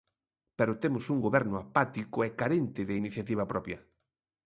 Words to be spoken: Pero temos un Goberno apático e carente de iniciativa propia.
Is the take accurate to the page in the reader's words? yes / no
yes